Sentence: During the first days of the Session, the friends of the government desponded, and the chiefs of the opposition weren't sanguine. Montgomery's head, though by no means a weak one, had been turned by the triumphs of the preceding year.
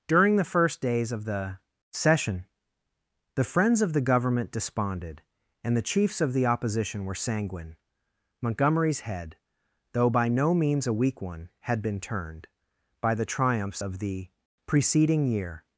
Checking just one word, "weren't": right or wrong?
wrong